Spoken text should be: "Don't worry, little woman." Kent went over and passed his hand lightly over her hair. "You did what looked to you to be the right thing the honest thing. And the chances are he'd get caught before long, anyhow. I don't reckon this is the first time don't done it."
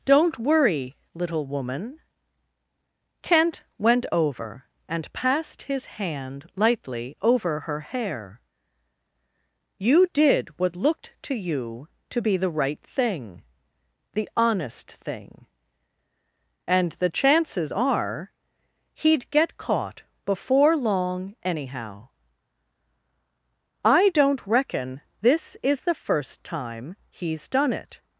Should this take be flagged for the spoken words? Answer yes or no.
yes